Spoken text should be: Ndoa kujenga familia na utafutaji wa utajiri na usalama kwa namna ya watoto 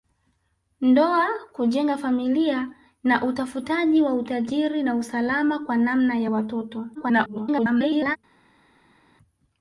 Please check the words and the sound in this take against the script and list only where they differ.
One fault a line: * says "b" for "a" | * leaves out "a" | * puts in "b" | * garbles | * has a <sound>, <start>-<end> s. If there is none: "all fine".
* garbles